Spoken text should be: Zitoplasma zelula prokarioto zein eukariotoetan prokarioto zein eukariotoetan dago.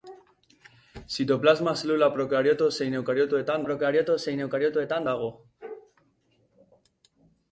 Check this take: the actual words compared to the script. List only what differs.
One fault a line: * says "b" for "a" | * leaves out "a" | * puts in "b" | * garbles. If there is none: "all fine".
all fine